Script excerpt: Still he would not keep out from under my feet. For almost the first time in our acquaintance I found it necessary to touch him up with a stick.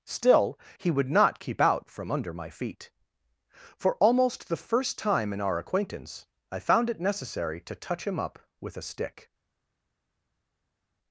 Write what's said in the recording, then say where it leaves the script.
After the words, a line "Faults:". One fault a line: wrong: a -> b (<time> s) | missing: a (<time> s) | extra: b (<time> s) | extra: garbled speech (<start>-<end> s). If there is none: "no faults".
Still he would not keep out from under my feet. For almost the first time in our acquaintance I found it necessary to touch him up with a stick.
Faults:
no faults